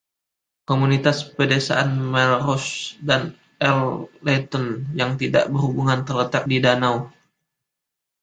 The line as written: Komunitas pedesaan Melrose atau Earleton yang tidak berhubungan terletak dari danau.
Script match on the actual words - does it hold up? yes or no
no